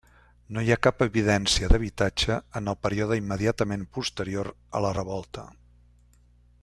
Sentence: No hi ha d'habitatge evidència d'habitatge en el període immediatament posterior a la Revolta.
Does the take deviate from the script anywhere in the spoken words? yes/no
yes